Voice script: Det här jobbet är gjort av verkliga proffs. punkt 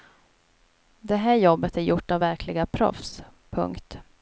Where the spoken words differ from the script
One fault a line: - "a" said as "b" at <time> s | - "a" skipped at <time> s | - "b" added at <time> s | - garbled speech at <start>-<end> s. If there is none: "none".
none